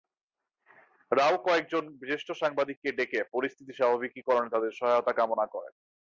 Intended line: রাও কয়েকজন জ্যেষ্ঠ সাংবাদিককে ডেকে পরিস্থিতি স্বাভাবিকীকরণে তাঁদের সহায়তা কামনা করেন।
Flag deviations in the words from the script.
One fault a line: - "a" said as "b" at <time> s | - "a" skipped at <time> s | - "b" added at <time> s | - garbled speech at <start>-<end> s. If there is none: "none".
none